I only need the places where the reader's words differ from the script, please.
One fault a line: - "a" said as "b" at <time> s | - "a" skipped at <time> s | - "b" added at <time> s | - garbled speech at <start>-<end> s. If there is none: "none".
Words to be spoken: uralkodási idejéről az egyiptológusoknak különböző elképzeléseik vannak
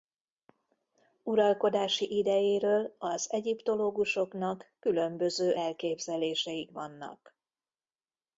none